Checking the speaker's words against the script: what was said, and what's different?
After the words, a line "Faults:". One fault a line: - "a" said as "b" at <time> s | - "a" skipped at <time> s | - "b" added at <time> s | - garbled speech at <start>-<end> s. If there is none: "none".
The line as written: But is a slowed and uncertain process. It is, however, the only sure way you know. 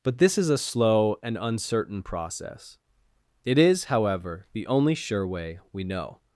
But this is a slow and uncertain process. It is, however, the only sure way we know.
Faults:
- "this" added at 0.2 s
- "slowed" said as "slow" at 0.6 s
- "you" said as "we" at 5.7 s